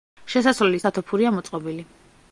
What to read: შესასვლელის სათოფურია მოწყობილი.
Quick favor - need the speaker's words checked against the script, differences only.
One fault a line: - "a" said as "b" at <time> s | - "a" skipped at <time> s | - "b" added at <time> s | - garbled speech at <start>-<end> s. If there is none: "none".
none